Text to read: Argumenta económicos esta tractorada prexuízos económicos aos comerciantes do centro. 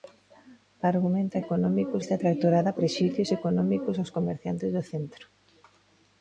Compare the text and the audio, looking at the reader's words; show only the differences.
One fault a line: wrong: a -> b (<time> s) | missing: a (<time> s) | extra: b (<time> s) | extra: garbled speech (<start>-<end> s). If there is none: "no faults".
no faults